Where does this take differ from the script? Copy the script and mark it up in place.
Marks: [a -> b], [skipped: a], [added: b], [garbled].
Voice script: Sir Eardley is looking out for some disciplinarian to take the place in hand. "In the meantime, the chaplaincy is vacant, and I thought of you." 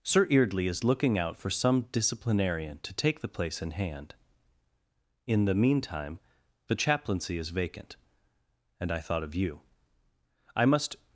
Sir Eardley is looking out for some disciplinarian to take the place in hand. "In the meantime, the chaplaincy is vacant, and I thought of you." [added: I must]